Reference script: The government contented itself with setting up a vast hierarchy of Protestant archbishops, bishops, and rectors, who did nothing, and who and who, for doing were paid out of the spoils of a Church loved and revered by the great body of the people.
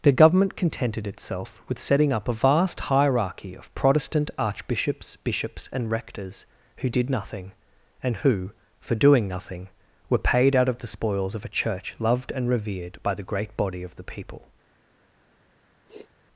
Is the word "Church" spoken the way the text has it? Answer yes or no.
yes